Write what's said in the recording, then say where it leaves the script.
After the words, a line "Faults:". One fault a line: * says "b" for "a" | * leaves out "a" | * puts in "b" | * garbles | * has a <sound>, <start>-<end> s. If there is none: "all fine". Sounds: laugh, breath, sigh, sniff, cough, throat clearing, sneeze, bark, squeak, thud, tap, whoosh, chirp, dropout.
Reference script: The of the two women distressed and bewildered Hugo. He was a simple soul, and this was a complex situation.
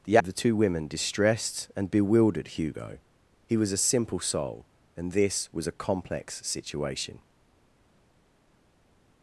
The of the two women distressed and bewildered Hugo. He was a simple soul, and this was a complex situation.
Faults:
all fine